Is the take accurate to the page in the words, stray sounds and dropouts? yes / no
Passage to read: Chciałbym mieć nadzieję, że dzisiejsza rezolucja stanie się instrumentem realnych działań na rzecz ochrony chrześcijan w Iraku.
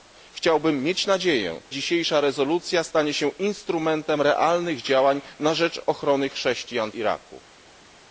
no